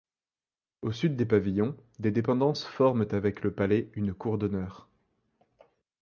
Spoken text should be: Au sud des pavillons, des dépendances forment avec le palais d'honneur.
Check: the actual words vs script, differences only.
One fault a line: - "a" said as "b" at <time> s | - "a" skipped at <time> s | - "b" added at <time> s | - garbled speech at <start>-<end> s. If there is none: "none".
- "une cour" added at 4.0 s